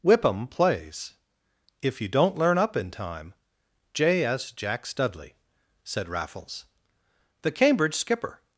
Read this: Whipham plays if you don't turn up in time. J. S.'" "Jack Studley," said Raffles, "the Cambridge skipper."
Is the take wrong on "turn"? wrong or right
wrong